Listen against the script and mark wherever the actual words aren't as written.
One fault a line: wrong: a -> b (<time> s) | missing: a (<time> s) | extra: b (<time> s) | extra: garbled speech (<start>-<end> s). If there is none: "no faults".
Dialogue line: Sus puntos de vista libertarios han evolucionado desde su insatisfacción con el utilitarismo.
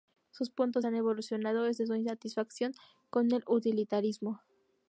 missing: de vista libertarios (0.8 s)